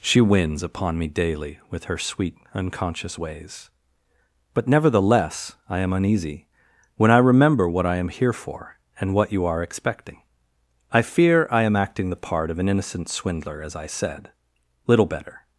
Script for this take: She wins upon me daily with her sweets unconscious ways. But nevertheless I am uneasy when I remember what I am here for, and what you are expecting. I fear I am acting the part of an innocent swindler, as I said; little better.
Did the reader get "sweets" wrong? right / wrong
wrong